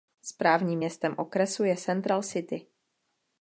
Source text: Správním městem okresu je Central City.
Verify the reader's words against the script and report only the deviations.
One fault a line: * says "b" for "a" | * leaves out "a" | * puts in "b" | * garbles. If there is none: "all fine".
all fine